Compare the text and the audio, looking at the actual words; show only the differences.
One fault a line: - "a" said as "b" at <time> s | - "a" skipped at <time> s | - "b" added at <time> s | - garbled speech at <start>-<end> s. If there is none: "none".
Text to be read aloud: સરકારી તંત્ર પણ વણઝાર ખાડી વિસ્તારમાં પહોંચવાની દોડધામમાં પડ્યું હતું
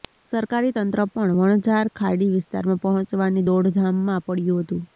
none